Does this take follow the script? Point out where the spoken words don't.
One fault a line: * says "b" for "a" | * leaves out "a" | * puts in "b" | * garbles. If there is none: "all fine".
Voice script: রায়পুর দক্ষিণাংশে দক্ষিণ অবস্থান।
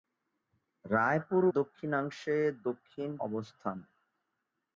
all fine